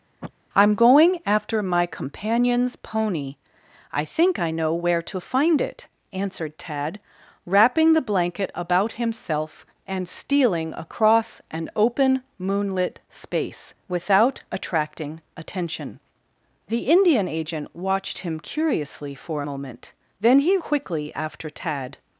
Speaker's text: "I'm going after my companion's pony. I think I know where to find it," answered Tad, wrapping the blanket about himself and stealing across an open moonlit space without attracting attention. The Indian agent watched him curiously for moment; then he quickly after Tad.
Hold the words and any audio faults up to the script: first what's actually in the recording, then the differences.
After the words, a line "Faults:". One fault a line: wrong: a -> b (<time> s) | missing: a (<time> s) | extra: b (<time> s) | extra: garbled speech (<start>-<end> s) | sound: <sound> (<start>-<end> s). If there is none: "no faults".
"I'm going after my companion's pony. I think I know where to find it," answered Tad, wrapping the blanket about himself and stealing across an open moonlit space without attracting attention. The Indian agent watched him curiously for moment; then he quickly after Tad.
Faults:
sound: sniff (0.2-0.3 s)